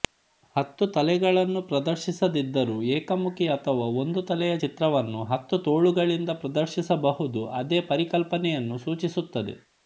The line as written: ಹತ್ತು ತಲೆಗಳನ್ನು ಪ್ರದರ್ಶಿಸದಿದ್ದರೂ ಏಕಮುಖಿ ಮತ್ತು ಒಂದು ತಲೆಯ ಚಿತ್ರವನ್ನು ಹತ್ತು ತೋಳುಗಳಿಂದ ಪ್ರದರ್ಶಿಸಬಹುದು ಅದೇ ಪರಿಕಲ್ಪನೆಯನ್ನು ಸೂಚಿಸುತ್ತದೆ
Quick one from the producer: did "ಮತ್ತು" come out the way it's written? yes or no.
no